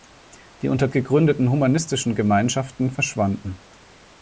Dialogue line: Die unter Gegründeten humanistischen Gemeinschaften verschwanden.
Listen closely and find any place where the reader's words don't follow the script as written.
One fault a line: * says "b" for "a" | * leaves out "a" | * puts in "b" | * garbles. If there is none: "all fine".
all fine